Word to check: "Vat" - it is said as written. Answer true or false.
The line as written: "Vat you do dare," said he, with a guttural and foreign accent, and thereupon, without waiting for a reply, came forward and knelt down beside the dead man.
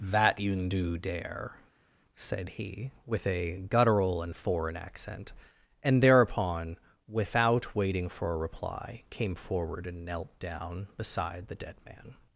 false